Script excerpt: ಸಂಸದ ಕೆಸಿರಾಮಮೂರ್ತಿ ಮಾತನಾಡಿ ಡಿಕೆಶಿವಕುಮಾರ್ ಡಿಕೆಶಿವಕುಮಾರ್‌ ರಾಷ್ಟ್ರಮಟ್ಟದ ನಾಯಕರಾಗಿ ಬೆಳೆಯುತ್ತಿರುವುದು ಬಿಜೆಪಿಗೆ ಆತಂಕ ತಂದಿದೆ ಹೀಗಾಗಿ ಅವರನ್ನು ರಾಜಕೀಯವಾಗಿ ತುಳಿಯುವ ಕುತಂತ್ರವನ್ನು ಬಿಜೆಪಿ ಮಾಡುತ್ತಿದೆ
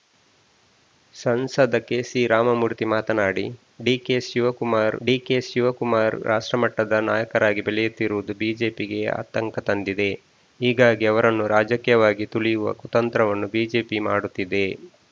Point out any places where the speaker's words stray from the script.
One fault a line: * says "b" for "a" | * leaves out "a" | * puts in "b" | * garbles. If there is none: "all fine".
all fine